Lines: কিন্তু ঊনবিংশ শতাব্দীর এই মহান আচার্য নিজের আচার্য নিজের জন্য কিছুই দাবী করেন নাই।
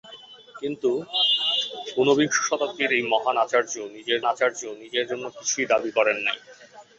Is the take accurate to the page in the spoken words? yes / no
yes